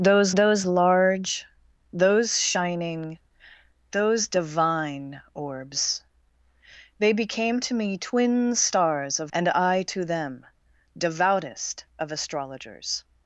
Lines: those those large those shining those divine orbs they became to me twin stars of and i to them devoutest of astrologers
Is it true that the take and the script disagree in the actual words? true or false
false